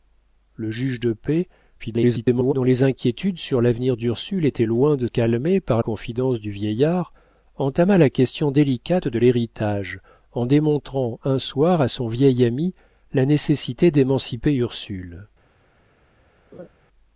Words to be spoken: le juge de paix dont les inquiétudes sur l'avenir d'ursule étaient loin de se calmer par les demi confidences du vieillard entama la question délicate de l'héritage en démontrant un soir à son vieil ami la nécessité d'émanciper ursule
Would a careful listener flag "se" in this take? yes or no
yes